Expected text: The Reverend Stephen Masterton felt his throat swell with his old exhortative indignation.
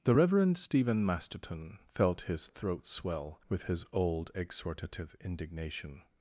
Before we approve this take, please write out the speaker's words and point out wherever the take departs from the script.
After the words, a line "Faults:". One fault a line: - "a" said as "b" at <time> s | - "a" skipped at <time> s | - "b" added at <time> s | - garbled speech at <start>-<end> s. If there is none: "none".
The Reverend Stephen Masterton felt his throat swell with his old exhortative indignation.
Faults:
none